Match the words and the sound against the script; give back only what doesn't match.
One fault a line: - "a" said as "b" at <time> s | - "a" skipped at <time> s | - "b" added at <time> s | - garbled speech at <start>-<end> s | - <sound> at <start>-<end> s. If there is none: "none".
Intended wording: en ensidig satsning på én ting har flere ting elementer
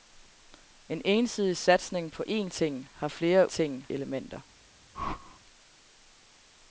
- whoosh at 4.9-5.4 s